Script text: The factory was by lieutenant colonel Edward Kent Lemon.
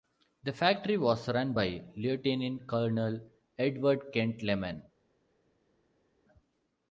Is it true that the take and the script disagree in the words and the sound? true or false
true